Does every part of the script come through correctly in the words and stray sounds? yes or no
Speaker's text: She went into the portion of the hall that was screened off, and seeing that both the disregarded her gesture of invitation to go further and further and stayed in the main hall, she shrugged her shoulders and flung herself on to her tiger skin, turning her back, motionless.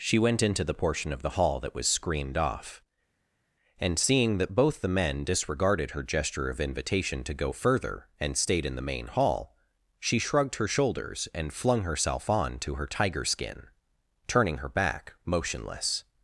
no